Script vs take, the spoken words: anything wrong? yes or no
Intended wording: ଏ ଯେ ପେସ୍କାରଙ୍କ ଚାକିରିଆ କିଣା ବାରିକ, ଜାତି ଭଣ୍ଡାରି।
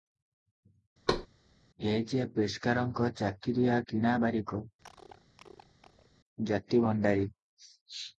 no